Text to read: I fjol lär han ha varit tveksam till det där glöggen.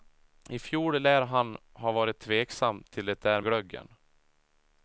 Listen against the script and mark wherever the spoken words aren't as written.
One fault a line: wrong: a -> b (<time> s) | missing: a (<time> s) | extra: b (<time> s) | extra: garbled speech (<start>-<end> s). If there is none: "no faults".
no faults